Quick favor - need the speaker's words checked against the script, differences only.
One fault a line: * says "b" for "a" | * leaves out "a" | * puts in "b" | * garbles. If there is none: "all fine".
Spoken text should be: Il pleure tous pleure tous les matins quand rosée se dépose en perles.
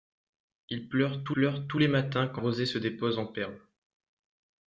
all fine